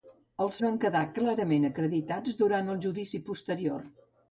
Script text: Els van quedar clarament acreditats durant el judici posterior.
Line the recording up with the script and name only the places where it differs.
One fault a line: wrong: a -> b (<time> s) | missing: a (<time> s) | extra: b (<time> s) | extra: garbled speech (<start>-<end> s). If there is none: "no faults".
no faults